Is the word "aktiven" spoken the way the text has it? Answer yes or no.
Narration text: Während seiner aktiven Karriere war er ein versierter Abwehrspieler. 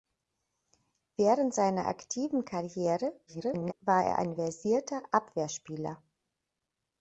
yes